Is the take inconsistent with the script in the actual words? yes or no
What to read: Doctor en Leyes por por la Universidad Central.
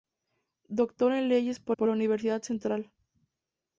no